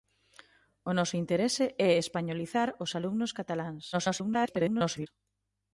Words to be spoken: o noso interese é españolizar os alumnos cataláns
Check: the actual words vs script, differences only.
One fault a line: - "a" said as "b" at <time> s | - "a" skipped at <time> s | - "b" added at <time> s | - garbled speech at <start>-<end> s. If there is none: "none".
- garbled speech at 3.9-5.1 s